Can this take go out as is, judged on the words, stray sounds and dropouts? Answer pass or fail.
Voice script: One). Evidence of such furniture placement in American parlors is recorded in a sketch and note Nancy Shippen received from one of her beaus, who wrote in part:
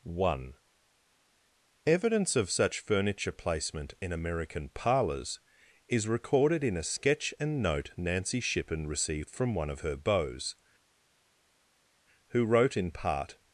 pass